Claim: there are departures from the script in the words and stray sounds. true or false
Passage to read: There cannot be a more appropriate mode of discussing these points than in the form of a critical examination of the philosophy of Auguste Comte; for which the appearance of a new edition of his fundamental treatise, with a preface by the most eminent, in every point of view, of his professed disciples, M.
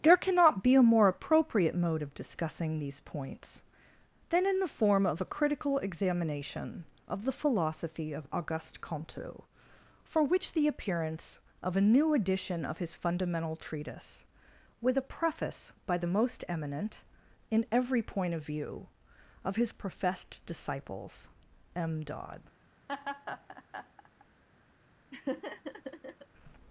true